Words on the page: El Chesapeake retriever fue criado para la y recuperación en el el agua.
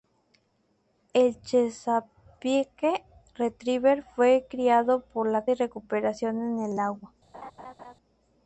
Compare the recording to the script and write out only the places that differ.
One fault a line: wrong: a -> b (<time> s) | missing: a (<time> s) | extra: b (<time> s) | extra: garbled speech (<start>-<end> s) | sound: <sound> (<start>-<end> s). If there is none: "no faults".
sound: laugh (7.3-7.9 s)